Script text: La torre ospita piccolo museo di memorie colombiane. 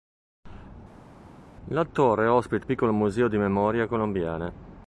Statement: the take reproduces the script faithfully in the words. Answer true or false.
true